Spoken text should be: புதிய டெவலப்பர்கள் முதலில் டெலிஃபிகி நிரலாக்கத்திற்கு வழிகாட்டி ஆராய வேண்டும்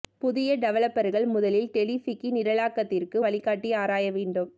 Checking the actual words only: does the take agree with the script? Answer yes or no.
yes